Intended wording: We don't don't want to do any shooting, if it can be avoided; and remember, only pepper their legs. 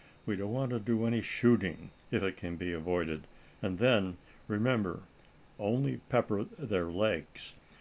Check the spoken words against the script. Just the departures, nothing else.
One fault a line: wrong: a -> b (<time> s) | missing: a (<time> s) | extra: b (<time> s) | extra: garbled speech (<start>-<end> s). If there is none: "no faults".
missing: don't (0.5 s)
extra: then (3.8 s)